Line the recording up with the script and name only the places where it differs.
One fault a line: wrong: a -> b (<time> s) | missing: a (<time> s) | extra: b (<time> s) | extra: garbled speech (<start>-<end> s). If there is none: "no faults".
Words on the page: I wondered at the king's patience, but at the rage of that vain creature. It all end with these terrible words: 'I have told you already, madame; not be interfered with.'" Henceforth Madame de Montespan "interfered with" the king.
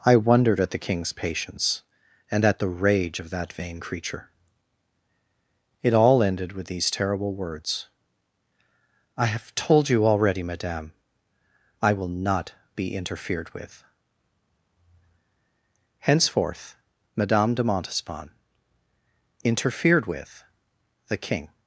wrong: but -> and (2.3 s)
wrong: end -> ended (6.2 s)
extra: I will (11.8 s)